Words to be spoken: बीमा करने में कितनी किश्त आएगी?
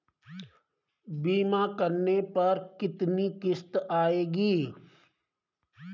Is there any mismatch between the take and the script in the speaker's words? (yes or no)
yes